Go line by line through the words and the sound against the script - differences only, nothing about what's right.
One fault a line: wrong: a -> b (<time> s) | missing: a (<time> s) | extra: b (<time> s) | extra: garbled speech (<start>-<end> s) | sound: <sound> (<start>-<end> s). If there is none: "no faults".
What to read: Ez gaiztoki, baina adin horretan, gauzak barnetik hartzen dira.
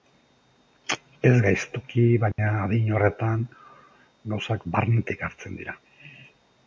sound: dropout (2.3-2.4 s)